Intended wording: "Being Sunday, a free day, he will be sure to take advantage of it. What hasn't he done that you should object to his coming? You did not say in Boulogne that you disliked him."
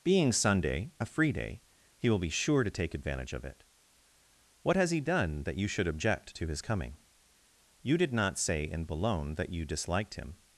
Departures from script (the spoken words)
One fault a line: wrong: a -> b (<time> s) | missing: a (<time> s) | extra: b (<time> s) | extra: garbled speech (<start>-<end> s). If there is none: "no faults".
wrong: hasn't -> has (4.8 s)